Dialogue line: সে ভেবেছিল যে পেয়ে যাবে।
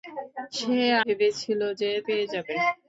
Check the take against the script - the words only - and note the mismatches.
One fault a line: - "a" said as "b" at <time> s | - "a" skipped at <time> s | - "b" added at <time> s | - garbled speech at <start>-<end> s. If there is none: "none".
none